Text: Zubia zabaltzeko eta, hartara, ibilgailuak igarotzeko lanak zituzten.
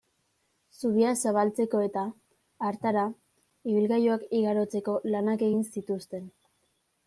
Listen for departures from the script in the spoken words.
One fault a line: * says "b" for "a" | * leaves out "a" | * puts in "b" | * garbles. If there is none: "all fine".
* puts in "egin"